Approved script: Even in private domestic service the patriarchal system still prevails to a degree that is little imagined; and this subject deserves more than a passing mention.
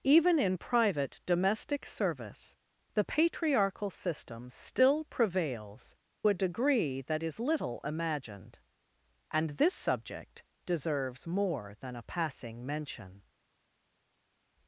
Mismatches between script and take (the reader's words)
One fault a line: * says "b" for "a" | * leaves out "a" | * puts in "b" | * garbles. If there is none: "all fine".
* leaves out "to"